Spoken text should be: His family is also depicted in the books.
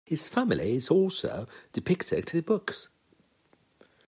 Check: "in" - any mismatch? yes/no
yes